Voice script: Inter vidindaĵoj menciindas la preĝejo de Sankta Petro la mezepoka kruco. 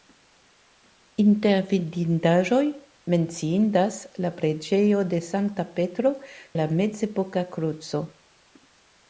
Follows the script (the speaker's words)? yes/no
yes